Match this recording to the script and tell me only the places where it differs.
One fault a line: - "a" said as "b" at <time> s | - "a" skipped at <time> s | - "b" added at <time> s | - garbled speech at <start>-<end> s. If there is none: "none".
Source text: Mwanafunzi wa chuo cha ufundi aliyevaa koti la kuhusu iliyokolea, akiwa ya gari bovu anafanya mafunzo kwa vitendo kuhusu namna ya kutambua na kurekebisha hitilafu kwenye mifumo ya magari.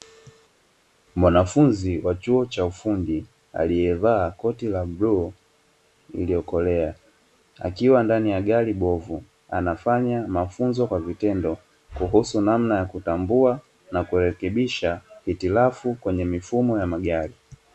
- "kuhusu" said as "bluu" at 4.8 s
- "ndani" added at 8.0 s